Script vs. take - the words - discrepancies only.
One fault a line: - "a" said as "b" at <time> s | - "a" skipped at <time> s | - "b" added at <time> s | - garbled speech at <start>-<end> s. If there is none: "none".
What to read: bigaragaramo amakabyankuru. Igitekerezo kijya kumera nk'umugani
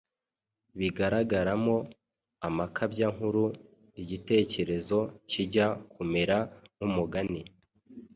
none